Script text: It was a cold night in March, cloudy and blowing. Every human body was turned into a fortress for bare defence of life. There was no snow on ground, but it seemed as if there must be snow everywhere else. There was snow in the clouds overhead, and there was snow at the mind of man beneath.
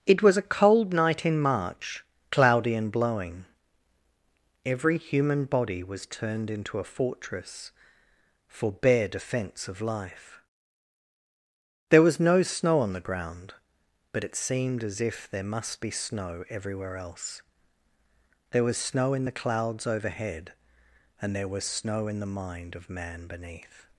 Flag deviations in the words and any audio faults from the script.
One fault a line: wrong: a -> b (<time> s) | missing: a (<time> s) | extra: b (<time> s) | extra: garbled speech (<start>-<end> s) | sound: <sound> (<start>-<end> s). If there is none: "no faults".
extra: the (12.9 s)
wrong: at -> in (22.1 s)